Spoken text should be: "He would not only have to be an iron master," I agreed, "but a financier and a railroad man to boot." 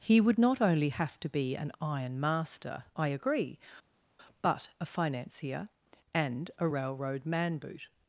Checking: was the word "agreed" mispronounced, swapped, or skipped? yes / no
yes